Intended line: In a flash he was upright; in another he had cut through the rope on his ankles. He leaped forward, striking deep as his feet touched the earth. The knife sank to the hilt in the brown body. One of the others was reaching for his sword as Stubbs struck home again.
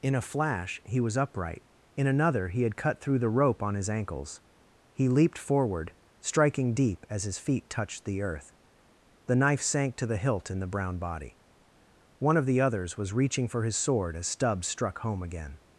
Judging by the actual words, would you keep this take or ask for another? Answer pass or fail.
pass